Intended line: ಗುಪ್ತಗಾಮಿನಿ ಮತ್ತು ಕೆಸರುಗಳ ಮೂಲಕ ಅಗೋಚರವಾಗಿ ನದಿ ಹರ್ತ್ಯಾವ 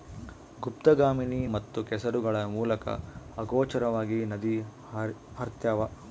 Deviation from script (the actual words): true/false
false